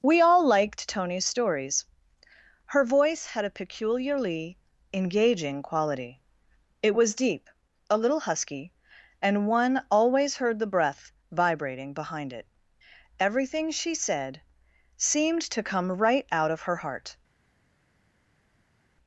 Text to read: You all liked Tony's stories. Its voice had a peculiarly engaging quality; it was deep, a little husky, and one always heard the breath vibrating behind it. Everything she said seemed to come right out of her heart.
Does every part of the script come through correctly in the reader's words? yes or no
no